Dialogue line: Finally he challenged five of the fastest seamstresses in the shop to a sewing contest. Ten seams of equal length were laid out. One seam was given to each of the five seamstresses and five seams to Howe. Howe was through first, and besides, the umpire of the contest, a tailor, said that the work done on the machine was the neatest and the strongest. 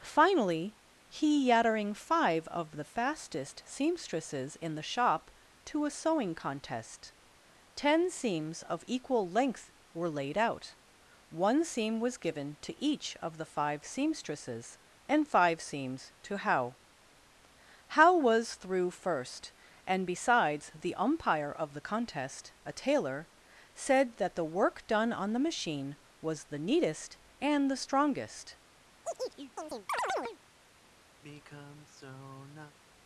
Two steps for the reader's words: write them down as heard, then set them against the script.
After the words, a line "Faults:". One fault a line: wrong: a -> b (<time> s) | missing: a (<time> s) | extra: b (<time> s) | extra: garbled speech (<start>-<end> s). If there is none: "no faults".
Finally he yattering five of the fastest seamstresses in the shop to a sewing contest. Ten seams of equal length were laid out. One seam was given to each of the five seamstresses and five seams to Howe. Howe was through first, and besides, the umpire of the contest, a tailor, said that the work done on the machine was the neatest and the strongest.
Faults:
wrong: challenged -> yattering (1.5 s)